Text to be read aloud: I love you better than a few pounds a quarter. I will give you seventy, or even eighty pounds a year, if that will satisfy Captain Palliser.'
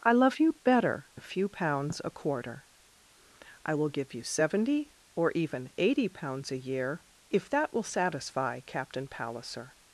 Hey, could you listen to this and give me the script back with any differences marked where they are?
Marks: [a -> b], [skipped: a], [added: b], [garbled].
I love you better [skipped: than] a few pounds a quarter. I will give you seventy, or even eighty pounds a year, if that will satisfy Captain Palliser.'